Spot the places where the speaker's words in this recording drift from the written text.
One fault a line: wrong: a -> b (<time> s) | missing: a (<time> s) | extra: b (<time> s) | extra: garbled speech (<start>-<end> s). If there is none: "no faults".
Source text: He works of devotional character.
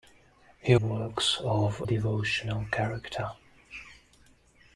no faults